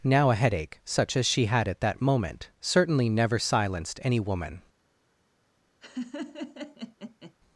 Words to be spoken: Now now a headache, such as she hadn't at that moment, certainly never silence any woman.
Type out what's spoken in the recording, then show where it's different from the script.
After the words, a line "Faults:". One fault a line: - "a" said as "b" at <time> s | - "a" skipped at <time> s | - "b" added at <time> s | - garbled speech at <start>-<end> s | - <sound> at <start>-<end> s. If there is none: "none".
Now a headache, such as she had at that moment, certainly never silenced any woman.
Faults:
- "now" skipped at 0.3 s
- "hadn't" said as "had" at 1.4 s
- "silence" said as "silenced" at 3.4 s
- laugh at 5.8-7.3 s